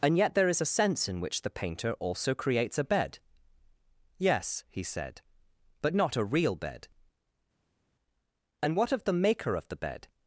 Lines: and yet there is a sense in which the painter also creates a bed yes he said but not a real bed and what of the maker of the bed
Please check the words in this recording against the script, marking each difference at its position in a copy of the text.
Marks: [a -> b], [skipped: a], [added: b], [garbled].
and yet there is a sense in which the painter also creates a bed yes he said but not a real bed and what of the maker of the bed